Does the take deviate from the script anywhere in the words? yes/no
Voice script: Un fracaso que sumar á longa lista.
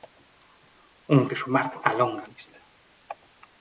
yes